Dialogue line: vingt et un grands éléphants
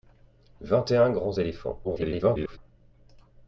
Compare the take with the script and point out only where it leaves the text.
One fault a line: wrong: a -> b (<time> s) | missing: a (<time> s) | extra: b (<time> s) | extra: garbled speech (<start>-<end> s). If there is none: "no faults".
extra: garbled speech (1.8-2.6 s)